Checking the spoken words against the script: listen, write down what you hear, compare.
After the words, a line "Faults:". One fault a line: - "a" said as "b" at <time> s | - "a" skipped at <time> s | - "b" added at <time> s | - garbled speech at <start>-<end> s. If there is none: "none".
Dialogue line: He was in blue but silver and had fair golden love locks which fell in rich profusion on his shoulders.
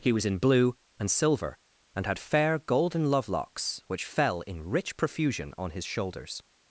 He was in blue and silver and had fair golden love locks which fell in rich profusion on his shoulders.
Faults:
- "but" said as "and" at 1.0 s